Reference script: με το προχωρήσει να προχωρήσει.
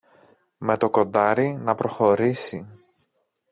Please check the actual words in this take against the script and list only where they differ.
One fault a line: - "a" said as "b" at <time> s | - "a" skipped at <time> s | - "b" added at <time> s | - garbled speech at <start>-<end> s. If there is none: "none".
- "προχωρήσει" said as "κοντάρι" at 0.9 s